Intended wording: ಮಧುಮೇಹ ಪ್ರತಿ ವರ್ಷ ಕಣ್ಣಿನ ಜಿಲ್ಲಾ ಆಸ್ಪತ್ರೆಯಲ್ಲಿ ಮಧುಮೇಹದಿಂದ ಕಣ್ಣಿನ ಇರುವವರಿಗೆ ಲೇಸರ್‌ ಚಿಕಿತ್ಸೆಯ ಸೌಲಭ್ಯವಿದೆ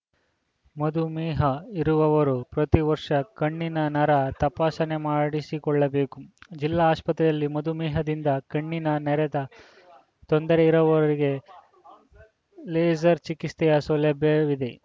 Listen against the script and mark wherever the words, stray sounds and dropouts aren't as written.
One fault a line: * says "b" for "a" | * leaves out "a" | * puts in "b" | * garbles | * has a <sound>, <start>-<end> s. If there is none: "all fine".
* puts in "ಇರುವವರು"
* puts in "ನರ ತಪಾಸಣೆ ಮಾಡಿಸಿಕೊಳ್ಳಬೇಕು"
* puts in "ನೆರದ ತೊಂದರೆ"